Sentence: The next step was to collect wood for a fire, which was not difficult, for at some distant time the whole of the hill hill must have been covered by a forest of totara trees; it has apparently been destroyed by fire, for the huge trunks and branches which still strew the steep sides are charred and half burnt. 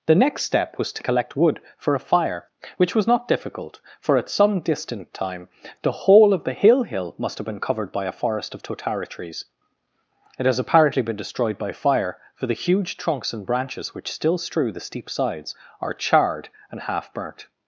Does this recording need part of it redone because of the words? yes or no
no